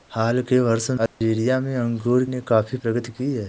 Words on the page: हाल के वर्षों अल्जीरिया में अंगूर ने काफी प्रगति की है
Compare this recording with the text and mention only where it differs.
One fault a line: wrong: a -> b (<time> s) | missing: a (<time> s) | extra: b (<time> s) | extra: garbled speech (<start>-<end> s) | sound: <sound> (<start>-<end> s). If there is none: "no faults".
sound: dropout (1.1-1.2 s)